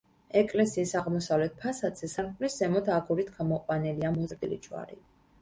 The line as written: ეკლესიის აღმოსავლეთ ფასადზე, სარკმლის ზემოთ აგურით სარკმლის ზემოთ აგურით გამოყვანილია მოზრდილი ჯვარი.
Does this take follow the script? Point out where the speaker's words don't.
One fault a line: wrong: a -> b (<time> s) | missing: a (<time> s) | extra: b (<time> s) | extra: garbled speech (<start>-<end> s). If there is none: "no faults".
missing: სარკმლის ზემოთ აგურით (3.3 s)